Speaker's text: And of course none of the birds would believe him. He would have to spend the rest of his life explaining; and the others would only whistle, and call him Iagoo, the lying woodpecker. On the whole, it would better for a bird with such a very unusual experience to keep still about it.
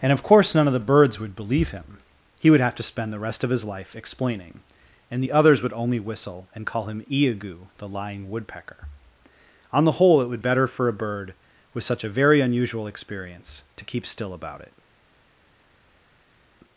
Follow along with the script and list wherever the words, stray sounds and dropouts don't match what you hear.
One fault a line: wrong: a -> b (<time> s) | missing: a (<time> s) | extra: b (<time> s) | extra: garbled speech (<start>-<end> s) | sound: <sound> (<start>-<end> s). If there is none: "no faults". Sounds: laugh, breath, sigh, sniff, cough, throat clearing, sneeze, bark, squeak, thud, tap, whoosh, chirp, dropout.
no faults